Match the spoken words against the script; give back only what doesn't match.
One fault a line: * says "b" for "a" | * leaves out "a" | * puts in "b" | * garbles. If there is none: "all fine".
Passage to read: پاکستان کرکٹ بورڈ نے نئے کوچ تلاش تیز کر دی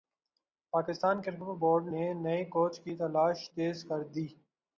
* puts in "کی"